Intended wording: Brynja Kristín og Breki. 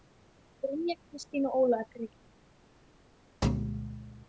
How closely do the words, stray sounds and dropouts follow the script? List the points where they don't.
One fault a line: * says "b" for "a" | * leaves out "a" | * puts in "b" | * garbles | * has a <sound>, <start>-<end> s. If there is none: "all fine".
* puts in "Ólafur"
* has a thud, 3.4-4.3 s